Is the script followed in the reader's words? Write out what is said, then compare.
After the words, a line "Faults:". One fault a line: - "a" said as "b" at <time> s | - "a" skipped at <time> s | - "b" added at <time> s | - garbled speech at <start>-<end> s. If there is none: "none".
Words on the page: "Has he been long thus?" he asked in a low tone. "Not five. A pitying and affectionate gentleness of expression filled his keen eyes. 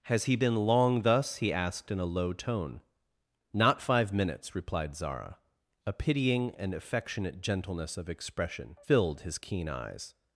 "Has he been long thus?" he asked in a low tone. "Not five minutes," replied Zara. A pitying and affectionate gentleness of expression filled his keen eyes.
Faults:
- "minutes replied Zara" added at 4.1 s